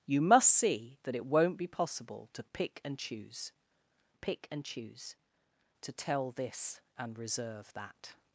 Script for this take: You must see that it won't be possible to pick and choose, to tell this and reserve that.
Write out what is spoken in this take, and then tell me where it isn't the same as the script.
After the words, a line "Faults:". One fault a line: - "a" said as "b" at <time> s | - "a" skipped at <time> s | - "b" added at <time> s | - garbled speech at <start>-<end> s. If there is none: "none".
You must see that it won't be possible to pick and choose pick and choose, to tell this and reserve that.
Faults:
- "pick and choose" added at 4.1 s